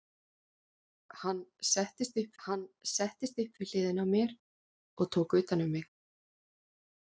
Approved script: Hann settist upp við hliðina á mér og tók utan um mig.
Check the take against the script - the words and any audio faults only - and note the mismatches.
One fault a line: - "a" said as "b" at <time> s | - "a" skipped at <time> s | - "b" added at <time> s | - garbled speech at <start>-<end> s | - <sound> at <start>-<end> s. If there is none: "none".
- "hann settist upp" added at 2.5 s